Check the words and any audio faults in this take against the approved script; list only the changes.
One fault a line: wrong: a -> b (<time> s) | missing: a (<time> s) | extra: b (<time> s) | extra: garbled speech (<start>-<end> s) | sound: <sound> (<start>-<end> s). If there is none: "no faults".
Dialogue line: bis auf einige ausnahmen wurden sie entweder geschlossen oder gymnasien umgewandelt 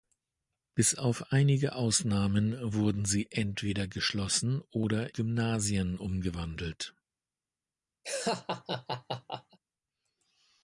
sound: laugh (8.0-9.6 s)